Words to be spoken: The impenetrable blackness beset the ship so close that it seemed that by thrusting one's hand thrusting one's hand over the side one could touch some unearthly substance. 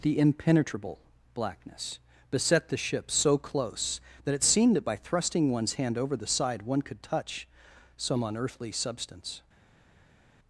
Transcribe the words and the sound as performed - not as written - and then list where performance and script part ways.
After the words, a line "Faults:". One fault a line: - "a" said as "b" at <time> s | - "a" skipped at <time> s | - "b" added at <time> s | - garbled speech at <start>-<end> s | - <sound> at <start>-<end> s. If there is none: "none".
The impenetrable blackness beset the ship so close that it seemed that by thrusting one's hand over the side one could touch some unearthly substance.
Faults:
- "thrusting one's hand" skipped at 6.0 s